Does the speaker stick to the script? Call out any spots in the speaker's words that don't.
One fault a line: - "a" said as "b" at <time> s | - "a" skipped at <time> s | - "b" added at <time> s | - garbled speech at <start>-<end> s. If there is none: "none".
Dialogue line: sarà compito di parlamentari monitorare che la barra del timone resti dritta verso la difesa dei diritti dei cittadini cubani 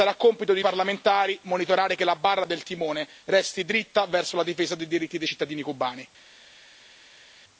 none